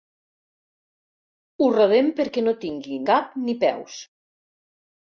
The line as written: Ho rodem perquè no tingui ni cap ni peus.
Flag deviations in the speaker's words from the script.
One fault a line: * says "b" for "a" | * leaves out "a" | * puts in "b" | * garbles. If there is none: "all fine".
* leaves out "ni"